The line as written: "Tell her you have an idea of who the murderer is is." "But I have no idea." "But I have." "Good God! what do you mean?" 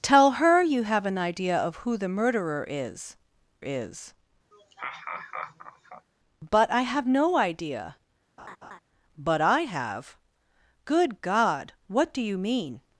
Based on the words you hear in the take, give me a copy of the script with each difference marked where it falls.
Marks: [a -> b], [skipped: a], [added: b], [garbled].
"Tell her you have an idea of who the murderer is is." "But I have no idea." "But I have." "Good God! what do you mean?"